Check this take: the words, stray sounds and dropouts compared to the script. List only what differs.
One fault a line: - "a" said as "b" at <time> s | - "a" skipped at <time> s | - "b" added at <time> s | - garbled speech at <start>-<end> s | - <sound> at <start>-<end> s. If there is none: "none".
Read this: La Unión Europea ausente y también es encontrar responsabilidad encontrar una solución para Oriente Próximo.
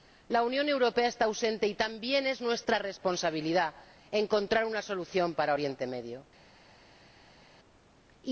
- "está" added at 1.1 s
- "encontrar" said as "nuestra" at 2.4 s